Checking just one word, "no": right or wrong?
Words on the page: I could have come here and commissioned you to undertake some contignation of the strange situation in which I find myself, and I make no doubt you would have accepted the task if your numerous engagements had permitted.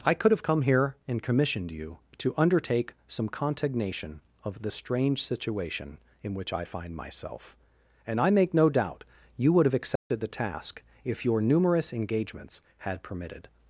right